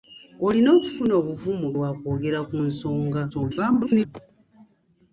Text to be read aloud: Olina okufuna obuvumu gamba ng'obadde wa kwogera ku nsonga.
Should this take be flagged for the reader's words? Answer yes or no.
yes